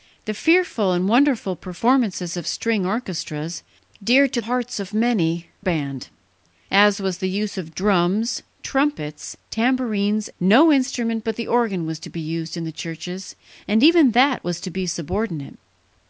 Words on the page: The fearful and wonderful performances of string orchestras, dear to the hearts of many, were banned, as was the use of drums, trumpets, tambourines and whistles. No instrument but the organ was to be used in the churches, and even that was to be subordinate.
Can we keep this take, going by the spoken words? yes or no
no